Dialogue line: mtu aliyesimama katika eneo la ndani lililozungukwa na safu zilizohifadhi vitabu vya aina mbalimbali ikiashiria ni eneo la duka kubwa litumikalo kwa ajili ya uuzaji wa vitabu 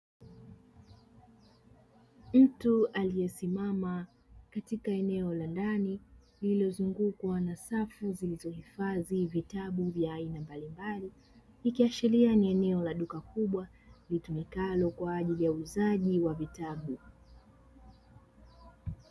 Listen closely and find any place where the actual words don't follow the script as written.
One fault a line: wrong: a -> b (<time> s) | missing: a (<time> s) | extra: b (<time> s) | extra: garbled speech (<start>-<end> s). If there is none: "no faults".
no faults